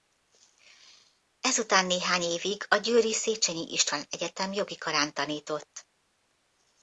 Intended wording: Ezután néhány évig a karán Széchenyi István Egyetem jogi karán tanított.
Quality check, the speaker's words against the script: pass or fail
fail